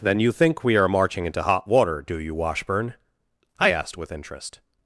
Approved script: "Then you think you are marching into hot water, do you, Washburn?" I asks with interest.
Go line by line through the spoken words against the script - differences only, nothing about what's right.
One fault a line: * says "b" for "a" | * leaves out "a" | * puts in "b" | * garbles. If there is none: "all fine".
* says "we" for "you"
* says "asked" for "asks"